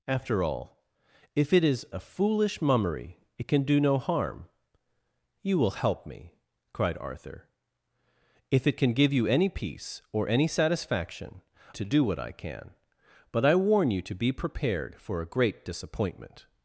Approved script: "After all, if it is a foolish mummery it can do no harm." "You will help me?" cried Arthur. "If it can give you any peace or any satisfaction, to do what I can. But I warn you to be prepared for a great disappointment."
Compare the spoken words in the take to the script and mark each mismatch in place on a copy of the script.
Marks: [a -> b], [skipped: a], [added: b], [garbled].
"After all, if it is a foolish mummery it can do no harm." "You will help me?" cried Arthur. "If it can give you any peace or any satisfaction, to do what I can. But I warn you to be prepared for a great disappointment."